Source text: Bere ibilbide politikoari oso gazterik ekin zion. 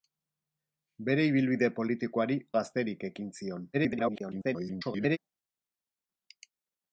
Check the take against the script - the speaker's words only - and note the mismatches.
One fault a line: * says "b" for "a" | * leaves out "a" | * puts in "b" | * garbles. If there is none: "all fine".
* leaves out "oso"
* garbles